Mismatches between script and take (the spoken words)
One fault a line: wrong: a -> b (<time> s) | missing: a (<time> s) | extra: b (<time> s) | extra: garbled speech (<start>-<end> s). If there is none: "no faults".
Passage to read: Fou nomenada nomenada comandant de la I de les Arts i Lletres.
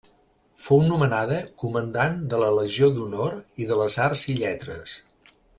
missing: nomenada (1.4 s)
extra: Legió d'Honor (2.6 s)